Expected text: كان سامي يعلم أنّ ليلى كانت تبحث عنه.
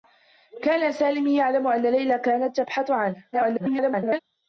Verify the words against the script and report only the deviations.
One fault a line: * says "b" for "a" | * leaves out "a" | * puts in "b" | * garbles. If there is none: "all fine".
* garbles